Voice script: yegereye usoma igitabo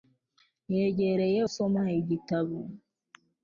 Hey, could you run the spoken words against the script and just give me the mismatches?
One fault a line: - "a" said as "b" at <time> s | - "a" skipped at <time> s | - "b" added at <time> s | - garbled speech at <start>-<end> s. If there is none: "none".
none